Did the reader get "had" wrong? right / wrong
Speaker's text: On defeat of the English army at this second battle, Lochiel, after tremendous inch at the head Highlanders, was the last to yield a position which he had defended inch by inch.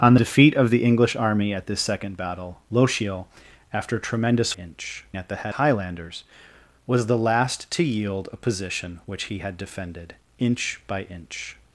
right